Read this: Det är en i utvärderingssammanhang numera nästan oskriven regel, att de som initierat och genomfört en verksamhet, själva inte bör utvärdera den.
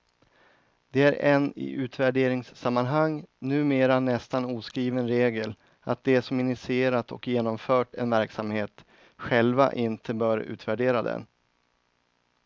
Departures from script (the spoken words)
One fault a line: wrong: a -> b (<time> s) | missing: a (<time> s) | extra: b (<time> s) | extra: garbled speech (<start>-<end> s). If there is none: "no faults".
no faults